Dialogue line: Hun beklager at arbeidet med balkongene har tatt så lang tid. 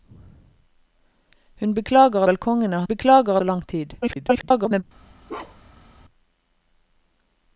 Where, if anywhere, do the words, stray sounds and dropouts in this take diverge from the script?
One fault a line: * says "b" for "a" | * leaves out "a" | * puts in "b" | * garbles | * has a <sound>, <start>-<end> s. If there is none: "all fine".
* leaves out "at arbeidet med"
* says "beklager" for "tatt"
* garbles
* has a bark, 5.3-5.9 s